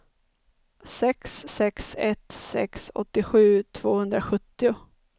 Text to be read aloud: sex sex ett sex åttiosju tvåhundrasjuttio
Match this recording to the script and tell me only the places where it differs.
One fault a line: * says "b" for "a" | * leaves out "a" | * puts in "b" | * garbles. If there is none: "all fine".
all fine